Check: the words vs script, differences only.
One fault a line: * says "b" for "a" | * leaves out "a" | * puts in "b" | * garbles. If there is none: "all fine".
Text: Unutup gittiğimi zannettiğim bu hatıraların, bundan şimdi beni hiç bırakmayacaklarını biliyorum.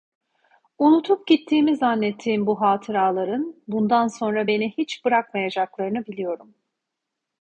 * says "sonra" for "şimdi"